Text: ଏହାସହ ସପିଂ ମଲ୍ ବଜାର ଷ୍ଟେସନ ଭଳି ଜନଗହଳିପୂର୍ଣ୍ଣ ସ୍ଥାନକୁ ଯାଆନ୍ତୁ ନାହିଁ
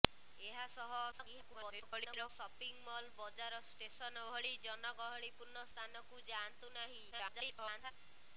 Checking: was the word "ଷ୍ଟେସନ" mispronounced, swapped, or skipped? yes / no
no